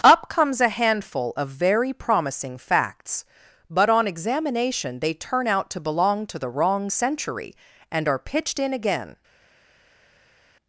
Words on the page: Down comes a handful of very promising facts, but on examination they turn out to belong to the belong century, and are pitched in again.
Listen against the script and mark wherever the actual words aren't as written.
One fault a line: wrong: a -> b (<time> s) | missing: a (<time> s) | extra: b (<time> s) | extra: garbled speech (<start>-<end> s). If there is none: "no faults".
wrong: Down -> Up (0.0 s)
wrong: belong -> wrong (6.5 s)